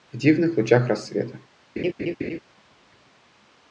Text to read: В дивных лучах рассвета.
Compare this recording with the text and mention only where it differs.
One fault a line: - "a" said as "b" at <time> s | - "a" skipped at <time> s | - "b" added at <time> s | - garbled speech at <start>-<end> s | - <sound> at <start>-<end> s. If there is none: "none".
- laugh at 1.8-2.4 s